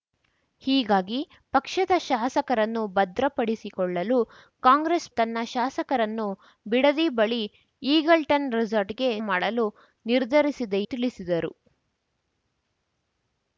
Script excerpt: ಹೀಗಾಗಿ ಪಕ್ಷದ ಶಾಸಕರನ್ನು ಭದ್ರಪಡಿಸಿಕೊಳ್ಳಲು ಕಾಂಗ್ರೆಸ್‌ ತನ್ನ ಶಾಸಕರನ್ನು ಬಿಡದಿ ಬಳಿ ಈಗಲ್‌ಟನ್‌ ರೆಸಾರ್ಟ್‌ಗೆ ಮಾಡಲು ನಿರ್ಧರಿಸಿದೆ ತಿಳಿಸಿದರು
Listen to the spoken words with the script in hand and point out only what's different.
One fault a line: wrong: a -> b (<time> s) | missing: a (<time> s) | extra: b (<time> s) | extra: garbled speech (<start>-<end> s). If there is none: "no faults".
no faults